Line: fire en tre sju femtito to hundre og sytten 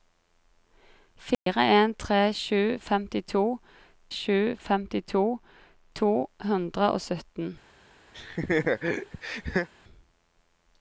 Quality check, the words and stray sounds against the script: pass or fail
fail